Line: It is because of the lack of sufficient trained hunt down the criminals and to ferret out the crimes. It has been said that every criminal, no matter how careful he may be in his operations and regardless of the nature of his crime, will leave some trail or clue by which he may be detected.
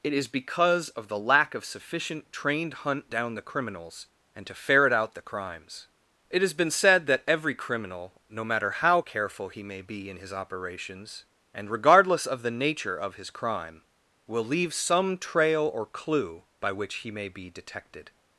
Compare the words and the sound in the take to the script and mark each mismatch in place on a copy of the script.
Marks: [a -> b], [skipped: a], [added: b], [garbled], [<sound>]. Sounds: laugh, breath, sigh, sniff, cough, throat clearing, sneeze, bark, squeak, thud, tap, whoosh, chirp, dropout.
It is because of the lack of sufficient trained hunt down the criminals and to ferret out the crimes. It has been said that every criminal, no matter how careful he may be in his operations and regardless of the nature of his crime, will leave some trail or clue by which he may be detected.